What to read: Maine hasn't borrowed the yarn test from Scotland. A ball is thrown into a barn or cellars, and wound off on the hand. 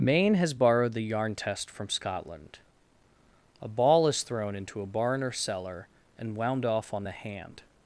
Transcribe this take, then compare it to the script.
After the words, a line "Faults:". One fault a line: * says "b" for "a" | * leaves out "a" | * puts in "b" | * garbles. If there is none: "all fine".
Maine has borrowed the yarn test from Scotland. A ball is thrown into a barn or cellar, and wound off on the hand.
Faults:
* says "has" for "hasn't"
* says "cellar" for "cellars"